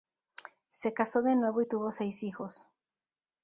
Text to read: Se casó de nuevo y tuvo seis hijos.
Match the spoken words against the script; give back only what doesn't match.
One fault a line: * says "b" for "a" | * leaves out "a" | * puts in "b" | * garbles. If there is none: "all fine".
all fine